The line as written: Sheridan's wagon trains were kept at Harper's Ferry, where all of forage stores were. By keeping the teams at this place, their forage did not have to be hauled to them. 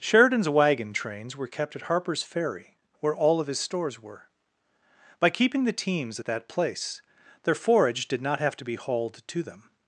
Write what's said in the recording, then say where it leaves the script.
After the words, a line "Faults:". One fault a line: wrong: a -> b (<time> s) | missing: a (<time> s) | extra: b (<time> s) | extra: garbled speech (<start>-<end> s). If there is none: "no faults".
Sheridan's wagon trains were kept at Harper's Ferry, where all of his stores were. By keeping the teams at that place, their forage did not have to be hauled to them.
Faults:
wrong: forage -> his (3.5 s)
wrong: this -> that (6.3 s)